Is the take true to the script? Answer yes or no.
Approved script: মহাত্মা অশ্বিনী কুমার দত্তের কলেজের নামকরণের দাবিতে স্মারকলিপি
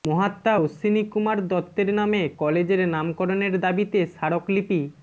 no